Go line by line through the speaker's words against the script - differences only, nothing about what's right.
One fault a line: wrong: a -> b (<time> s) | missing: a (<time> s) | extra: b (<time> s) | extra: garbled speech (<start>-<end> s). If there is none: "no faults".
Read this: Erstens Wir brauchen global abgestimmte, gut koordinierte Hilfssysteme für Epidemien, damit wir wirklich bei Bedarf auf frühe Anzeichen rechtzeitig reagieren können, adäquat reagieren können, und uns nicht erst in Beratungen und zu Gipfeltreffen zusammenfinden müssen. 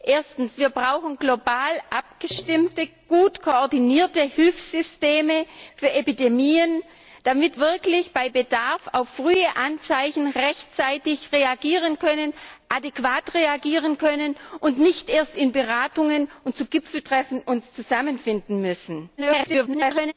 missing: wir (7.6 s)
extra: garbled speech (19.2-20.1 s)